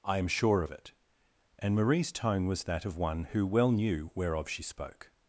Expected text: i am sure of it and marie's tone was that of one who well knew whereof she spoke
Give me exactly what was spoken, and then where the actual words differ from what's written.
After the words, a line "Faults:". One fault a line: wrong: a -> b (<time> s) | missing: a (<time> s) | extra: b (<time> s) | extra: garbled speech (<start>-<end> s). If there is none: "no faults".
i am sure of it and marie's tone was that of one who well knew whereof she spoke
Faults:
no faults